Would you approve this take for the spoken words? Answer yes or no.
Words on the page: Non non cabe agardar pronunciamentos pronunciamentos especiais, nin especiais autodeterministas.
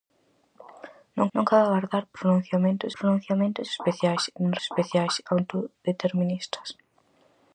yes